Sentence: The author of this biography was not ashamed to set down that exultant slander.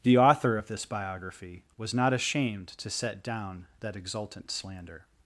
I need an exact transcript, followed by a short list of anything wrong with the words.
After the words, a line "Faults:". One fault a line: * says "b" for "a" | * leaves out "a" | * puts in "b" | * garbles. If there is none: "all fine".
The author of this biography was not ashamed to set down that exultant slander.
Faults:
all fine